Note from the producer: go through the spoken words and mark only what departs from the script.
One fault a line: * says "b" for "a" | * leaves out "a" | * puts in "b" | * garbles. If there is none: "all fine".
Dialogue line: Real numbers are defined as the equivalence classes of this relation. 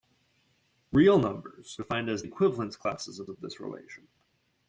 * leaves out "are"
* leaves out "the"
* puts in "of"